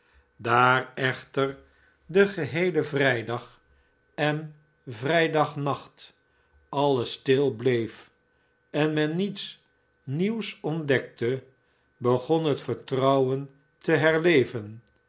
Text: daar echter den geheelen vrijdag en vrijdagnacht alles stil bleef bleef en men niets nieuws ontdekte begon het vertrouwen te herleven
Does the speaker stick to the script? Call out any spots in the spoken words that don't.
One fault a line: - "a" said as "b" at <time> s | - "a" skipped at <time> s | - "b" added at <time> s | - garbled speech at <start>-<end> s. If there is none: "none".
- "bleef" skipped at 8.1 s